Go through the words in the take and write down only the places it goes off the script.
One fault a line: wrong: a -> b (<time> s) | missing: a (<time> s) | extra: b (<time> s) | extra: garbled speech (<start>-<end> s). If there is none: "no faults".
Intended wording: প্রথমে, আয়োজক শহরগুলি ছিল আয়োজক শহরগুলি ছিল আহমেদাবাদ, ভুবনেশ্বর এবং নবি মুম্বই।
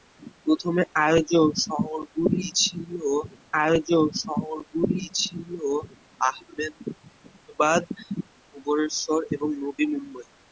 no faults